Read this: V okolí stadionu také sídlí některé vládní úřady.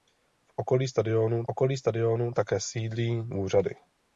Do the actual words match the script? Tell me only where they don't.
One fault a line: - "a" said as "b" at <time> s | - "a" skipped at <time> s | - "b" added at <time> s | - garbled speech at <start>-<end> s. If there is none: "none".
- "okolí stadionu" added at 1.5 s
- "některé vládní" skipped at 3.2 s